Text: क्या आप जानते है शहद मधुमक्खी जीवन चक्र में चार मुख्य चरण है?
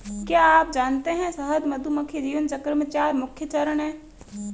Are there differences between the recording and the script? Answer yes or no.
no